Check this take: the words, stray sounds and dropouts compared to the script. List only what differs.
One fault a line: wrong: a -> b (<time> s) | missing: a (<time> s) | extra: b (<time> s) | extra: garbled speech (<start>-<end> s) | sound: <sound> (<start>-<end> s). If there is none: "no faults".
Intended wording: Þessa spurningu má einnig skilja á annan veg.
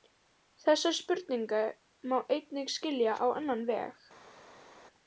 no faults